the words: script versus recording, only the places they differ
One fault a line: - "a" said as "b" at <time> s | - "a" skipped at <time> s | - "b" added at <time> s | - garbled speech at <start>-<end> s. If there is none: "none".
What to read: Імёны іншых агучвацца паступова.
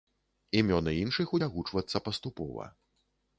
none